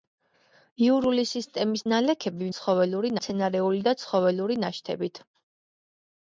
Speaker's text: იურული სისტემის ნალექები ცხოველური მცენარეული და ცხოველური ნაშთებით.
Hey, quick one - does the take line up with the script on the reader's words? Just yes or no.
yes